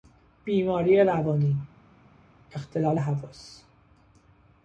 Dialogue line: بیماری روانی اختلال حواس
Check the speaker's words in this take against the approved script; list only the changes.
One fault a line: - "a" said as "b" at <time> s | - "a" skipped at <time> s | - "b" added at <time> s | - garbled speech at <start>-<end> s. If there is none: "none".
none